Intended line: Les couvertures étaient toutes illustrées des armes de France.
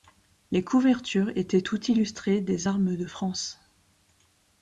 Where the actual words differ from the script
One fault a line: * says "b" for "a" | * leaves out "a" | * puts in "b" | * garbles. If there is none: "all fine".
all fine